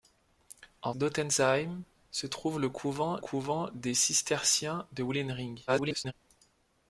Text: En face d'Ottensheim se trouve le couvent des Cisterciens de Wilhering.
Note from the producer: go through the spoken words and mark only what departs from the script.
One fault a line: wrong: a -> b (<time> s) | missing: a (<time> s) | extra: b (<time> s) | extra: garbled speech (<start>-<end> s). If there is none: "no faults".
missing: face (0.9 s)
extra: couvent (3.2 s)
extra: garbled speech (5.7-6.1 s)